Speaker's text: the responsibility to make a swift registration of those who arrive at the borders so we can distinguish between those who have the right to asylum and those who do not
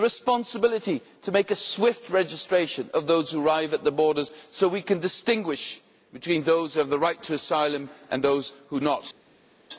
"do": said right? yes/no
no